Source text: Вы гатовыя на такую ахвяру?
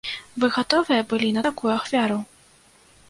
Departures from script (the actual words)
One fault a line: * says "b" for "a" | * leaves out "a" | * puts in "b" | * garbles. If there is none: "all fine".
* puts in "былі"